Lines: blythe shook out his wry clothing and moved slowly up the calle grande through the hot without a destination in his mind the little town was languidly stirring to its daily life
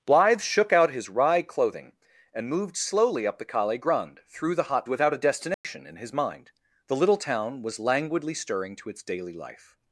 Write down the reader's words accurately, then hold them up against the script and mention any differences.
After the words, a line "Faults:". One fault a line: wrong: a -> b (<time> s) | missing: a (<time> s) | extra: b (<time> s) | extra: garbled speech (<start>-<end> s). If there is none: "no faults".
blythe shook out his wry clothing and moved slowly up the calle grande through the hot without a destination in his mind the little town was languidly stirring to its daily life
Faults:
no faults